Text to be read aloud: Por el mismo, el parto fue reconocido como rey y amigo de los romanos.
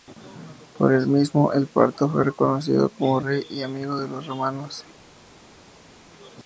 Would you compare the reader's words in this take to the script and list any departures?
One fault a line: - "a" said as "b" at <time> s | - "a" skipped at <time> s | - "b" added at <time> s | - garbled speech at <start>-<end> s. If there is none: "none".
none